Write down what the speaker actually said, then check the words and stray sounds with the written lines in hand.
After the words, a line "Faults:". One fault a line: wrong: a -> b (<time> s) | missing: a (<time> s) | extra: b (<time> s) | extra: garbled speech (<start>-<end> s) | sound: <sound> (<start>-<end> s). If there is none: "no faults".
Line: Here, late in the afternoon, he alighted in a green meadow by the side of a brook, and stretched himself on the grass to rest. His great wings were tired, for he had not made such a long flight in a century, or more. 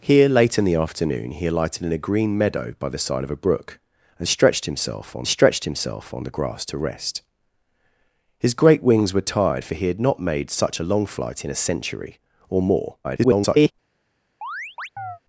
Here, late in the afternoon, he alighted in a green meadow by the side of a brook, and stretched himself on stretched himself on the grass to rest. His great wings were tired, for he had not made such a long flight in a century, or more. [garbled]
Faults:
extra: stretched himself on (5.3 s)
extra: garbled speech (13.0-13.7 s)
sound: chirp (14.4-15.2 s)